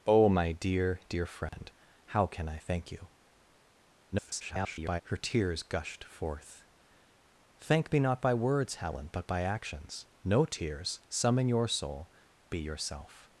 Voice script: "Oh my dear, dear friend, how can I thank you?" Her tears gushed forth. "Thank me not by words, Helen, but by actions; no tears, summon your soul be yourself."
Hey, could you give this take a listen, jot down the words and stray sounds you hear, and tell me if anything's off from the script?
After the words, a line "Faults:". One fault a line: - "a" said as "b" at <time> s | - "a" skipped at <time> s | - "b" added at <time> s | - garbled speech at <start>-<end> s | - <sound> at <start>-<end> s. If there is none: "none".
"Oh my dear, dear friend, how can I thank you?" [garbled] Her tears gushed forth. "Thank me not by words, Helen, but by actions; no tears, summon your soul be yourself."
Faults:
- dropout at 1.5-1.5 s
- garbled speech at 4.1-5.0 s